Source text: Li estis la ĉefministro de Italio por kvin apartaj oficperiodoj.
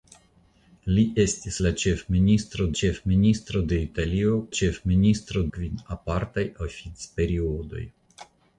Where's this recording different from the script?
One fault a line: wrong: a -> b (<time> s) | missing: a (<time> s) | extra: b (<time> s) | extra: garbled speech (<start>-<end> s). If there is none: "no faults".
extra: ĉefministro (2.8 s)
wrong: por -> ĉefministro (4.6 s)